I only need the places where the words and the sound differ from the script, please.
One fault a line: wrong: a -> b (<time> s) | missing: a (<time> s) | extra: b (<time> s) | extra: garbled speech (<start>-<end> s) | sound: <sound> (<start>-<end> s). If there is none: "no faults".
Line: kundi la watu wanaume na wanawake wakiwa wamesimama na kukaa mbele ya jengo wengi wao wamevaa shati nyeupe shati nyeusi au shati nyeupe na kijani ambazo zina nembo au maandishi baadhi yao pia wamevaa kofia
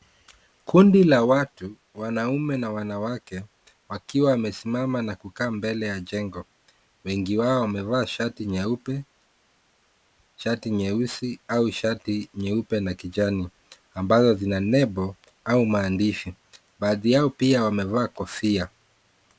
no faults